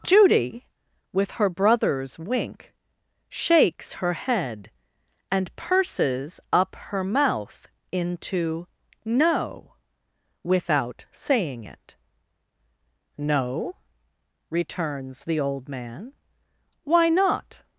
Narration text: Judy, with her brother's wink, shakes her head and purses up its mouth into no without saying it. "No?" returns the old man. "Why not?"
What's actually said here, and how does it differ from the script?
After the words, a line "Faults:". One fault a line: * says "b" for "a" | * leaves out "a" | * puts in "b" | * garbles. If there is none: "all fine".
Judy, with her brother's wink, shakes her head and purses up her mouth into no without saying it. "No?" returns the old man. "Why not?"
Faults:
* says "her" for "its"